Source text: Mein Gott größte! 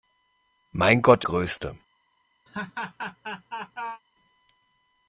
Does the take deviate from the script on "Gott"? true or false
false